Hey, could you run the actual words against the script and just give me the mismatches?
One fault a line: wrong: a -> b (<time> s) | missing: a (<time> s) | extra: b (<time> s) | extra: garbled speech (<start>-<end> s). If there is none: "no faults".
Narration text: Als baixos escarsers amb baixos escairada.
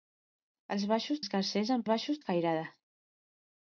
no faults